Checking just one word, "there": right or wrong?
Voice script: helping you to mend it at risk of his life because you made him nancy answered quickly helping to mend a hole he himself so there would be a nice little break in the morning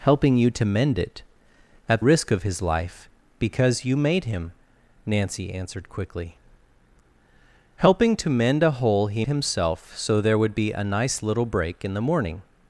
right